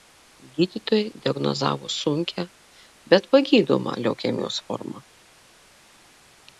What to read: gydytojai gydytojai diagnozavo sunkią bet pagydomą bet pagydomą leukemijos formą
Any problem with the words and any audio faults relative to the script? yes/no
yes